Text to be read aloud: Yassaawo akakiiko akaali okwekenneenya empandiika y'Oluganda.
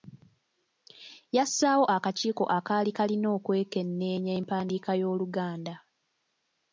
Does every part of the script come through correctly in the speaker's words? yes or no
no